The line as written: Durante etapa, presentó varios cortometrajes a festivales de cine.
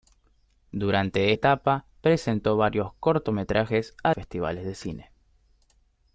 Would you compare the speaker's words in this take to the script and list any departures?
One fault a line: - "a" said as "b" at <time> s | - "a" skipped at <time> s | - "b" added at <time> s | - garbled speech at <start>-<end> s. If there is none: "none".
none